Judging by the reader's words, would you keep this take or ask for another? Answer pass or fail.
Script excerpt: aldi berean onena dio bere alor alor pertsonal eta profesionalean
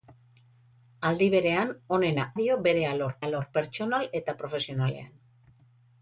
pass